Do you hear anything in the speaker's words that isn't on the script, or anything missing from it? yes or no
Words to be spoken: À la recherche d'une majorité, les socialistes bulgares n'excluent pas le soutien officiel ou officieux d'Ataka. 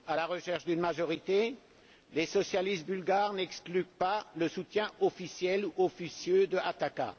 no